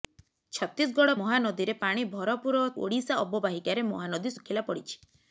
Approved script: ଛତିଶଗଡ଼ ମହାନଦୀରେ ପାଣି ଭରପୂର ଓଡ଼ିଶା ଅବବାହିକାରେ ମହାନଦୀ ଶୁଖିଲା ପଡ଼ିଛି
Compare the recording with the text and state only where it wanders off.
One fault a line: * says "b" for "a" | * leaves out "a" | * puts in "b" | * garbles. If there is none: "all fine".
all fine